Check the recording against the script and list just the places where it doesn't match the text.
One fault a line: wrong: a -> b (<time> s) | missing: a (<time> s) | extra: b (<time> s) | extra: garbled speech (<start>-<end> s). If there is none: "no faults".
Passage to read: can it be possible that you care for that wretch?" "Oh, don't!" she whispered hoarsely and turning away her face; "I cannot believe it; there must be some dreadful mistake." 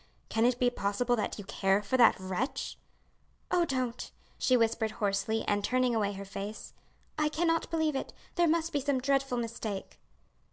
no faults